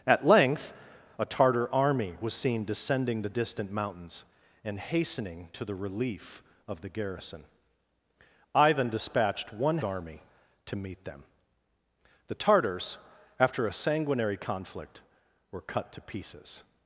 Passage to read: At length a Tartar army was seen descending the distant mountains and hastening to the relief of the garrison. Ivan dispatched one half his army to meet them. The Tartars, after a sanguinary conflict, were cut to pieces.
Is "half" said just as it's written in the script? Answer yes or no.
no